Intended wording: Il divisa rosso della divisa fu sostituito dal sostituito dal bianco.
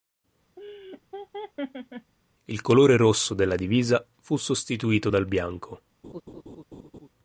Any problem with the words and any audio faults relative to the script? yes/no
yes